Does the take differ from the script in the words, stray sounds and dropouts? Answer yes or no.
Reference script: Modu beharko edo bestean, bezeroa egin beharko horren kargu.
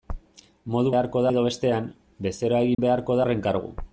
yes